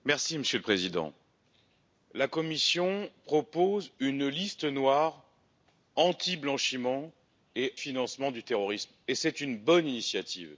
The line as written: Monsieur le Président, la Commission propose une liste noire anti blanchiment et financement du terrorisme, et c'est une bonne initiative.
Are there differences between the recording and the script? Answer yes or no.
no